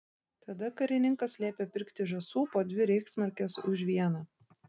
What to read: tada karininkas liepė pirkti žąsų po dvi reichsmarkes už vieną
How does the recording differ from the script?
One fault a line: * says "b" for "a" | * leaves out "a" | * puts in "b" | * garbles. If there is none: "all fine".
all fine